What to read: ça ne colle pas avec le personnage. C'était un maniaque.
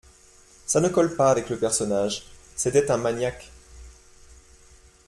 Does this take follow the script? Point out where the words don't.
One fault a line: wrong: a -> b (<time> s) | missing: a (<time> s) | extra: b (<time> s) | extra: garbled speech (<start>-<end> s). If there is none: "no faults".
no faults